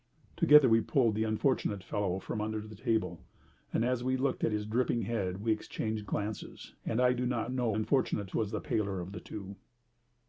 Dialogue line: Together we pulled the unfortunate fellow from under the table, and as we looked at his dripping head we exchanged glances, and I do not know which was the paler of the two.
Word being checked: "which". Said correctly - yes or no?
no